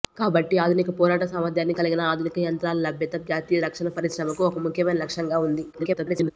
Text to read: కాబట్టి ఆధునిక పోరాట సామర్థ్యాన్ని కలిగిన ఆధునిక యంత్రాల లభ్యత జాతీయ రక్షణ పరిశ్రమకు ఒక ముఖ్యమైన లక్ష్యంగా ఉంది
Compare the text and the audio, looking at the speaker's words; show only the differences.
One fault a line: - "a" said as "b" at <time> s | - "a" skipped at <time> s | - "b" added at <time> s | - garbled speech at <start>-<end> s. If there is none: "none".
- garbled speech at 5.7-6.3 s